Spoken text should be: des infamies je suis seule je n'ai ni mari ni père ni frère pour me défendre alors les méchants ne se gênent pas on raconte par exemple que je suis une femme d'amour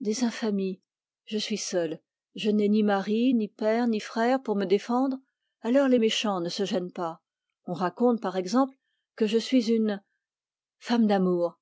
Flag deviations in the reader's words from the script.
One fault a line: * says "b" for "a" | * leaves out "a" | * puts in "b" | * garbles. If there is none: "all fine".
all fine